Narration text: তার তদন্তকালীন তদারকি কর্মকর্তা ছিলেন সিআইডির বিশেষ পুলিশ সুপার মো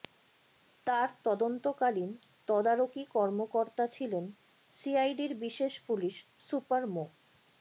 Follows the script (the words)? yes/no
yes